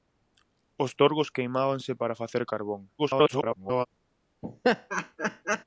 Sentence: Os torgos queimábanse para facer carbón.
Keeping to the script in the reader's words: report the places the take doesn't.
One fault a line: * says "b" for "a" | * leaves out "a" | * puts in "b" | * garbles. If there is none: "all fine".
* garbles